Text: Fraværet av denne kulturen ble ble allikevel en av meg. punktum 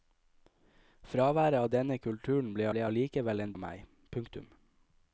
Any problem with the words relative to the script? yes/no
no